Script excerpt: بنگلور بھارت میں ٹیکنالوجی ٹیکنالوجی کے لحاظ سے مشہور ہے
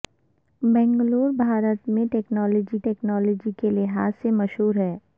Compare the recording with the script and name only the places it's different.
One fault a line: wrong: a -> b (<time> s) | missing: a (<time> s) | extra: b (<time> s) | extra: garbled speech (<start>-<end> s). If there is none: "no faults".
no faults